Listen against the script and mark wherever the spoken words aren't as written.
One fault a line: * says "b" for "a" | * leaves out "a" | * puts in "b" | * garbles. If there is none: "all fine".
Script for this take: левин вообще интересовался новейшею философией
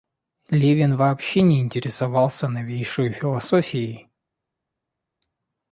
* puts in "не"